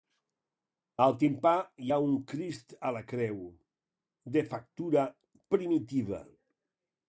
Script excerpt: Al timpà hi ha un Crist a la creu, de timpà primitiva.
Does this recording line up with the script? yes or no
no